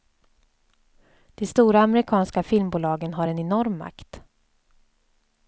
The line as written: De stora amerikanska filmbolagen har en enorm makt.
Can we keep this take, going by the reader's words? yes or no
yes